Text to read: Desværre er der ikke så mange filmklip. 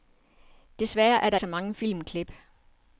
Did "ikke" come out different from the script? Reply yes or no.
yes